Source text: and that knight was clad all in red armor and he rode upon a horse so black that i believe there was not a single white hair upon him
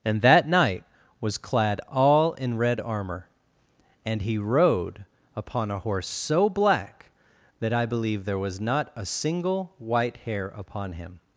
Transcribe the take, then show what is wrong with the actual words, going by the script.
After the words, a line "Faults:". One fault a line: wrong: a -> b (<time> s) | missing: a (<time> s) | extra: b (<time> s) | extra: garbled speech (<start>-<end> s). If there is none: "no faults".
and that knight was clad all in red armor and he rode upon a horse so black that i believe there was not a single white hair upon him
Faults:
no faults